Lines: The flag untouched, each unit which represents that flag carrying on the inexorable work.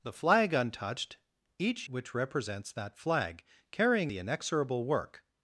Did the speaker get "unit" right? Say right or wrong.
wrong